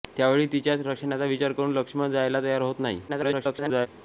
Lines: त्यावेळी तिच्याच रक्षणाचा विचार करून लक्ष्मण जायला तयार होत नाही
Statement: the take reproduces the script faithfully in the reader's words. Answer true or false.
false